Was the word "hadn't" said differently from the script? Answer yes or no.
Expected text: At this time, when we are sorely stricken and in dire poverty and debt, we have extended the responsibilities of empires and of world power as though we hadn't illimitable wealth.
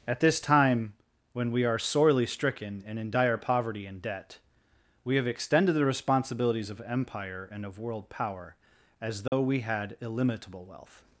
yes